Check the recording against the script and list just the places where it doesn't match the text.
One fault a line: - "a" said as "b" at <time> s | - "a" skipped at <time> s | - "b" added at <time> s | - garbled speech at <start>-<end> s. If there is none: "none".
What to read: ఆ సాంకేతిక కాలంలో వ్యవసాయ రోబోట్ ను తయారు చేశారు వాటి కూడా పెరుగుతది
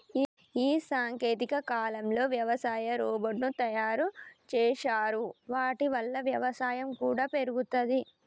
- "ఆ" said as "ఈ" at 0.6 s
- "వల్ల వ్యవసాయం" added at 5.9 s